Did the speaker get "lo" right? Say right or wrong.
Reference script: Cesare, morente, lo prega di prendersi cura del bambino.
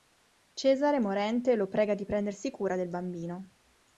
right